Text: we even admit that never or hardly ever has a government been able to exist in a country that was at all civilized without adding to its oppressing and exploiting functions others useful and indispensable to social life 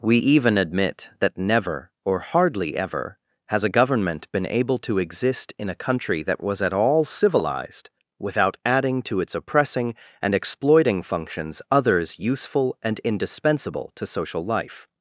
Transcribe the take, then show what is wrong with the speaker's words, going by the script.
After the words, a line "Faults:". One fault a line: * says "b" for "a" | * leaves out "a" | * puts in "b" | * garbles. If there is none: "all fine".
we even admit that never or hardly ever has a government been able to exist in a country that was at all civilized without adding to its oppressing and exploiting functions others useful and indispensable to social life
Faults:
all fine